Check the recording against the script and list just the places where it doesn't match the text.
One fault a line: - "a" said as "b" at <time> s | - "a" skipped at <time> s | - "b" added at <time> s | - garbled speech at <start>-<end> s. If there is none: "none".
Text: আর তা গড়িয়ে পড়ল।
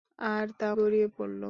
none